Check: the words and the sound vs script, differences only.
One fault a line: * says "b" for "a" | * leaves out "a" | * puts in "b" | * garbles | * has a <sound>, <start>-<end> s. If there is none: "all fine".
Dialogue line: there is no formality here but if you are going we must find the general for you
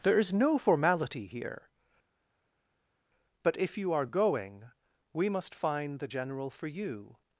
all fine